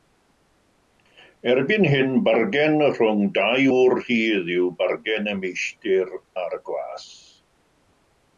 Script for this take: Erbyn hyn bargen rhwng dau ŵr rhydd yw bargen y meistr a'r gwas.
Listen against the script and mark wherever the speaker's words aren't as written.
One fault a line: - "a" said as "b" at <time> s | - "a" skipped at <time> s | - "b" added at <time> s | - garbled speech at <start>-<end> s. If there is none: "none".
none